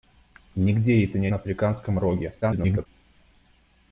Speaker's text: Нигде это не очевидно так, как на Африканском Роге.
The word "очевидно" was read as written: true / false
false